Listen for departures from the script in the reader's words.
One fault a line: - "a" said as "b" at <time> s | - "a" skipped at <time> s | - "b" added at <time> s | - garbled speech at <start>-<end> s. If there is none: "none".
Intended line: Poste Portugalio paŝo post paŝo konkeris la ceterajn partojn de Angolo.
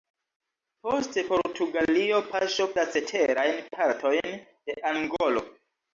- "post paŝo konkeris" skipped at 2.7 s